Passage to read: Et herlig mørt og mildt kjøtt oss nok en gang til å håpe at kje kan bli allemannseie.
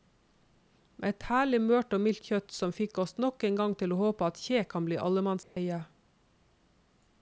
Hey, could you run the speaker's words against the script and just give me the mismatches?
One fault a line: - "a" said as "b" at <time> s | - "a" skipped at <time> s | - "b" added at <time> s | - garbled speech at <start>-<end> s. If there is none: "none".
- "som fikk" added at 2.6 s